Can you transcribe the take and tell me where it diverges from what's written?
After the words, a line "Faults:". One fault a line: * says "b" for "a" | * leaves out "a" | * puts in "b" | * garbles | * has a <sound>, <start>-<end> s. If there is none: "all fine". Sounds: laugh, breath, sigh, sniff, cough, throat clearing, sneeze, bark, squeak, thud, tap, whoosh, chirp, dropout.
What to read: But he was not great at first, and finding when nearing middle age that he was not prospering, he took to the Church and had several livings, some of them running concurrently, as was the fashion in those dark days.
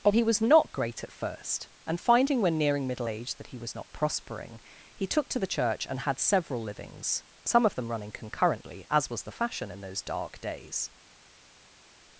But he was not great at first, and finding when nearing middle age that he was not prospering, he took to the Church and had several livings, some of them running concurrently, as was the fashion in those dark days.
Faults:
all fine